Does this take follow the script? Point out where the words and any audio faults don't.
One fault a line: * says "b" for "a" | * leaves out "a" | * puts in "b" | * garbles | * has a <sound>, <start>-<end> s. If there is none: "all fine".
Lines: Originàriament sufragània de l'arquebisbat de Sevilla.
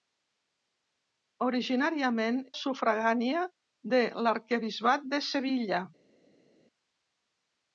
all fine